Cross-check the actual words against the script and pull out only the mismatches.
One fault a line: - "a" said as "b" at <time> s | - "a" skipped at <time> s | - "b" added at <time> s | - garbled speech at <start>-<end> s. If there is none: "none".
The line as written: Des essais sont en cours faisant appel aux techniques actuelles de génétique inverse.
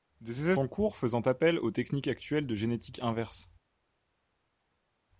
- "sont" skipped at 0.6 s